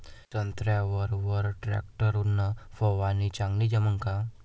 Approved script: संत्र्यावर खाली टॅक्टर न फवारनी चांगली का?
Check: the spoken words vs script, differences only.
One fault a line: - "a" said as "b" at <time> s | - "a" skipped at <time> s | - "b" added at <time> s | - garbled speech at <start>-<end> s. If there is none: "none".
- "खाली" said as "वर" at 1.1 s
- "जमन" added at 3.7 s